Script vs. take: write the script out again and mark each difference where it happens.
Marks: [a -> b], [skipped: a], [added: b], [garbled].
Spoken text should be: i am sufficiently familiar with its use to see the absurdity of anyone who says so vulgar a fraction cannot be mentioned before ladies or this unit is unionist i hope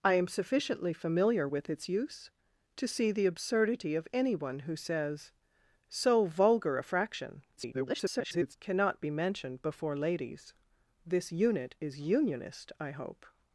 i am sufficiently familiar with its use to see the absurdity of anyone who says so vulgar a fraction [garbled] cannot be mentioned before ladies [skipped: or] this unit is unionist i hope